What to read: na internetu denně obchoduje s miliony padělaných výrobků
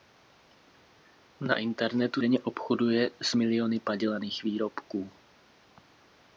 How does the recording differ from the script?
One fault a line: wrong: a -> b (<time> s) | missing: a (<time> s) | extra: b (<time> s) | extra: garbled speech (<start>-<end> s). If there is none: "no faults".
no faults